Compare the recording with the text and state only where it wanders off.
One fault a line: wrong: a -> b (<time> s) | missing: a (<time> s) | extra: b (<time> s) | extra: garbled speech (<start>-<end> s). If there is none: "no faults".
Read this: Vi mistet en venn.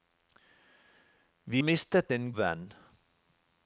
no faults